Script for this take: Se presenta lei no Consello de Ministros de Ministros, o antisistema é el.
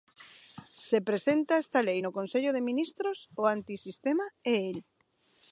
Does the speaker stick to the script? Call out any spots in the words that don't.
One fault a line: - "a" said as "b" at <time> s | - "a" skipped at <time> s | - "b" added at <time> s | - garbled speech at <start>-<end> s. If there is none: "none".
- "esta" added at 1.6 s
- "de Ministros" skipped at 3.2 s